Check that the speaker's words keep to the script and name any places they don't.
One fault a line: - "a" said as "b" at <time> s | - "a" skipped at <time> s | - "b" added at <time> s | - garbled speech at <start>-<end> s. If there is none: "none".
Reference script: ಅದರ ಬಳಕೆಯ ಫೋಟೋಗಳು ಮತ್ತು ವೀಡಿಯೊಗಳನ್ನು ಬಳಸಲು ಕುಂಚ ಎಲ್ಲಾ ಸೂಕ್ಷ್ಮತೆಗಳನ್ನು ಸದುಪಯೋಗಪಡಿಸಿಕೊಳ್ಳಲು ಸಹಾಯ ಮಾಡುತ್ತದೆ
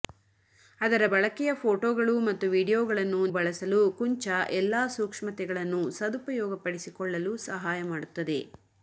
none